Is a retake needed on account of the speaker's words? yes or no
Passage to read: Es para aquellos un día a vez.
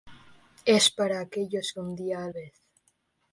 no